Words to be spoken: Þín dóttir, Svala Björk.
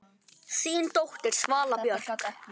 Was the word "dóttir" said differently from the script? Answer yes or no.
no